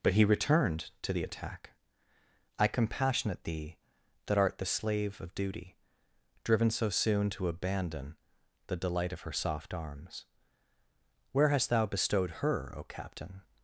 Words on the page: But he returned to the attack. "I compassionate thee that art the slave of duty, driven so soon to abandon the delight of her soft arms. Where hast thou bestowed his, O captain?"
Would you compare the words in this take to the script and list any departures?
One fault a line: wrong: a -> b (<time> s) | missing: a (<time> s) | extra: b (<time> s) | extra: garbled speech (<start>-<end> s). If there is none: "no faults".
wrong: his -> her (12.4 s)